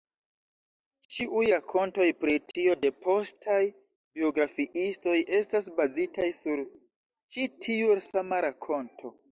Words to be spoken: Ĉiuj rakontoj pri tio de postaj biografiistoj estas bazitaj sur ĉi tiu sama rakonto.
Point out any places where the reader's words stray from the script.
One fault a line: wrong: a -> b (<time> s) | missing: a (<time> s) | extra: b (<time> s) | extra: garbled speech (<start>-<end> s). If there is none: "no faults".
no faults